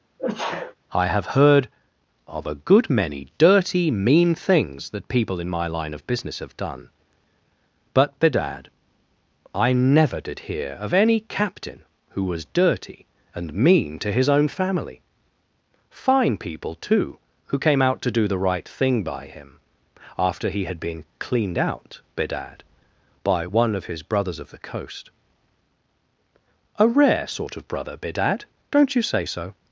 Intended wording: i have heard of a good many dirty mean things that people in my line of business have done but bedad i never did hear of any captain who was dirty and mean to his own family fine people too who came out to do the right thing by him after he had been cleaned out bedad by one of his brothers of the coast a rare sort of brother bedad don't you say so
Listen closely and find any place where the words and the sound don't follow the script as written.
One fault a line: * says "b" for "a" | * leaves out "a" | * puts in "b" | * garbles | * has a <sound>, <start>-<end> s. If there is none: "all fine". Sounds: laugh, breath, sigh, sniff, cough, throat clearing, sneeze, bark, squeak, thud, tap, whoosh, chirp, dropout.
* has a sneeze, 0.2-0.8 s